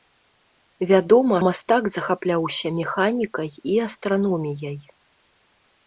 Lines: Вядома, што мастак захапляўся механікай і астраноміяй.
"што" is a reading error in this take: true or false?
true